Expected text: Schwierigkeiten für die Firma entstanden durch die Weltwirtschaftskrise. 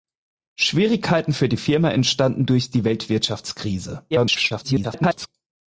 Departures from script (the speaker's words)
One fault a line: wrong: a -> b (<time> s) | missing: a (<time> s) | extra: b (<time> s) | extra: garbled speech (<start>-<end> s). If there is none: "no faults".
extra: garbled speech (4.1-5.3 s)